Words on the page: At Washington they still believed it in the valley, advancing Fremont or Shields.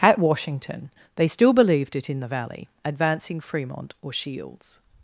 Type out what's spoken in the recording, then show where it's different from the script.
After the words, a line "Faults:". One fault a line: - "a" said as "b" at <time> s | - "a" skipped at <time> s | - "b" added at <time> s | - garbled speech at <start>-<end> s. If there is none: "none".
At Washington they still believed it in the valley, advancing Fremont or Shields.
Faults:
none